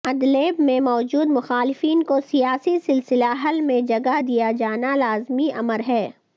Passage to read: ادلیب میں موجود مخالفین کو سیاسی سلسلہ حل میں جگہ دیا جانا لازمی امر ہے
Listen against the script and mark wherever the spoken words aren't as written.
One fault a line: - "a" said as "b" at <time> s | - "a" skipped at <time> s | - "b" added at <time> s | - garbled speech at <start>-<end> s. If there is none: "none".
none